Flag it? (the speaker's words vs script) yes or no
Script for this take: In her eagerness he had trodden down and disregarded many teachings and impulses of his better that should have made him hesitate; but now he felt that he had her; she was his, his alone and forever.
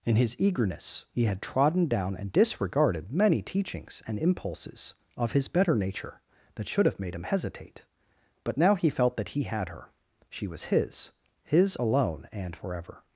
yes